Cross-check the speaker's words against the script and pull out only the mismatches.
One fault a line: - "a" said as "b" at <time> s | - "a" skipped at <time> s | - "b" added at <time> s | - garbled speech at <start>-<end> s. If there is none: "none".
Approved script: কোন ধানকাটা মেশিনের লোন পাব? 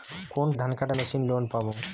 none